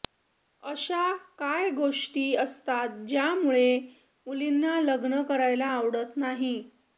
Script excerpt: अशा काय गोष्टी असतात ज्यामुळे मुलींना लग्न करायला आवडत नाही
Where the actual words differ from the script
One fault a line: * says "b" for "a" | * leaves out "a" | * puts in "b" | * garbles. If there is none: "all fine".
all fine